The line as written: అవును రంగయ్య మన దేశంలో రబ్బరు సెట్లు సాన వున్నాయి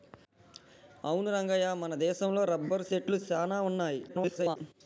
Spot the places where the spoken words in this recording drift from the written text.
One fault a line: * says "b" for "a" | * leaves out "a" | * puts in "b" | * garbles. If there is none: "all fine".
* garbles